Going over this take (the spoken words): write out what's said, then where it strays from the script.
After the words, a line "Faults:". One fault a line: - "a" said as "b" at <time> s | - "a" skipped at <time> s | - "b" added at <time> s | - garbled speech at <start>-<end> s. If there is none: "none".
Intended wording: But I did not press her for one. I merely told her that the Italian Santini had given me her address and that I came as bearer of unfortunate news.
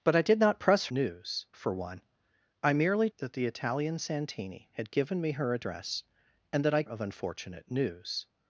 But I did not press news for one. I merely that the Italian Santini had given me her address and that I of unfortunate news.
Faults:
- "her" said as "news" at 0.9 s
- "told her" skipped at 3.1 s
- "came as bearer" skipped at 6.8 s